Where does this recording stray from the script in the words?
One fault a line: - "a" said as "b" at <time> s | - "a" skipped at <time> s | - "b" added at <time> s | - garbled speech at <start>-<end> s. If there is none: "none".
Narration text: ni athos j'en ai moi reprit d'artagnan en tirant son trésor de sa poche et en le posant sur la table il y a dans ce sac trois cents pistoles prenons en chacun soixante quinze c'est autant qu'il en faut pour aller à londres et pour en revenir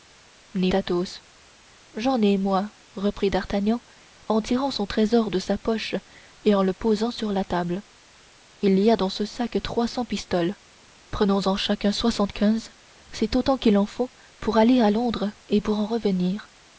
none